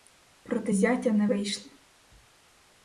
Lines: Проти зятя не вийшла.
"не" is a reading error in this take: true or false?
false